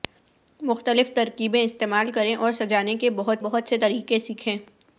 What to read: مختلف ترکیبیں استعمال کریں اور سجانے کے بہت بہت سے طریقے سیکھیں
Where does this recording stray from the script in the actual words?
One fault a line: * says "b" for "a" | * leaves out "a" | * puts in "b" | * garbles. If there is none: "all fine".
all fine